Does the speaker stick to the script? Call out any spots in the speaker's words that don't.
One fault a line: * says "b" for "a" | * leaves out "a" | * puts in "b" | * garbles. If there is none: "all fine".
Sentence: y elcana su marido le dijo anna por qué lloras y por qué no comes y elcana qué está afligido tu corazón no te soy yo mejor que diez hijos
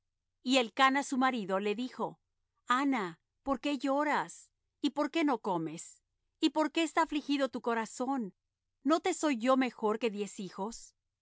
* says "por" for "elcana"